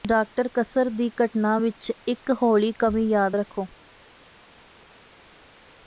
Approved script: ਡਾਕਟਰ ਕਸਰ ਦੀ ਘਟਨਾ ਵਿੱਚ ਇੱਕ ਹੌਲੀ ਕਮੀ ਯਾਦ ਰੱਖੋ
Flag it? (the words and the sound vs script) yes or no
no